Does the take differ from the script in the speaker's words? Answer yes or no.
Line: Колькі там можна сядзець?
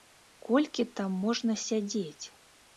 no